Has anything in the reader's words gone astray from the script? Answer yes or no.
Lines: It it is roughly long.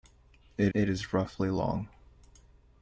no